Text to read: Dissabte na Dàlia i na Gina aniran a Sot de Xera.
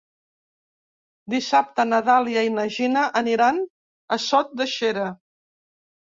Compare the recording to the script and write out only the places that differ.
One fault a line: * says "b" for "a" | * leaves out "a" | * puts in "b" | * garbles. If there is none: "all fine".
all fine